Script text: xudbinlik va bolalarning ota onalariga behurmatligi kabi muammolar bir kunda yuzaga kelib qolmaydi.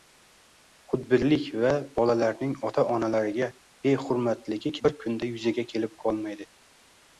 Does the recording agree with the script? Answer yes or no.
no